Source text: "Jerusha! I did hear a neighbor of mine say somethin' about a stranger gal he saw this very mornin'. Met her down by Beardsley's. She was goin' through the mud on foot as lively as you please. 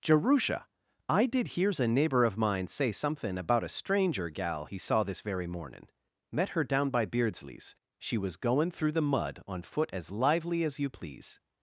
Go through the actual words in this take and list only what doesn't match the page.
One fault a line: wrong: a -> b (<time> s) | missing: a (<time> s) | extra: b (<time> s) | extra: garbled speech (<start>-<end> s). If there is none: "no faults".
wrong: hear -> hears (1.5 s)